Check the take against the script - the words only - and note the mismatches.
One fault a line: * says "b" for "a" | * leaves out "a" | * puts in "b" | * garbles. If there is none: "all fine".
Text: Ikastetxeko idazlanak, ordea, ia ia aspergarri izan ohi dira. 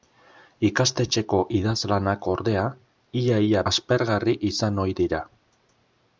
all fine